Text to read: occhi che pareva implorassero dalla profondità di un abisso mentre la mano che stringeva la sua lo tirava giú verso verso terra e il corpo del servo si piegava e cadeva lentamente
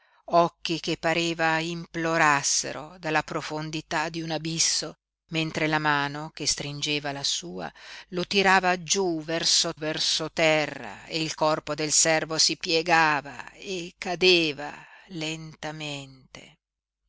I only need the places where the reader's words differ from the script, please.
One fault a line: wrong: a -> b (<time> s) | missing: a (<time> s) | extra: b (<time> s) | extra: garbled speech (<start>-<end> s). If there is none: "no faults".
no faults